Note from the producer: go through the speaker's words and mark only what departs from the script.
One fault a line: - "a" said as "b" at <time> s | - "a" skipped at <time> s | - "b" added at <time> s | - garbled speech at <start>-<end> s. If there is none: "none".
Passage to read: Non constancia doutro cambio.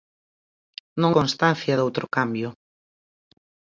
none